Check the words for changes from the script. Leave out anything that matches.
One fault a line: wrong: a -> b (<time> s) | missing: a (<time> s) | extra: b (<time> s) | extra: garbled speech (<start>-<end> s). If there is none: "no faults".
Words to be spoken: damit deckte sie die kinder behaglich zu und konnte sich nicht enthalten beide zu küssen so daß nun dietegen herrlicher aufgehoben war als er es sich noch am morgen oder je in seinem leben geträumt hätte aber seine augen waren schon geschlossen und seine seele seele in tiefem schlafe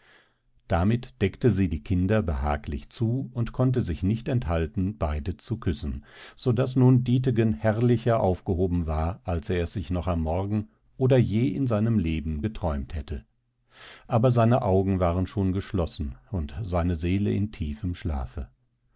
missing: seele (17.3 s)